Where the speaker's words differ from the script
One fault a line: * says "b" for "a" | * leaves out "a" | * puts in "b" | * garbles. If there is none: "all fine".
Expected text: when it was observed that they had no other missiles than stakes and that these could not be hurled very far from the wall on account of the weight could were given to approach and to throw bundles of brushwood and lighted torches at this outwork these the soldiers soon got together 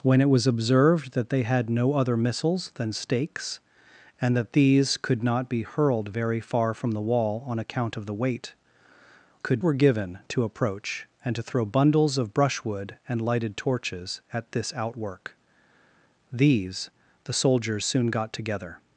all fine